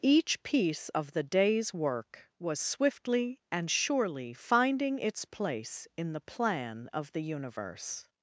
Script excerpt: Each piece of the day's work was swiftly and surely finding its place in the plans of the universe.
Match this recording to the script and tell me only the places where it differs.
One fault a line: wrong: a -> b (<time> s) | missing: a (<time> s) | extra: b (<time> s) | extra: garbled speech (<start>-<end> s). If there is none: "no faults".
wrong: plans -> plan (6.2 s)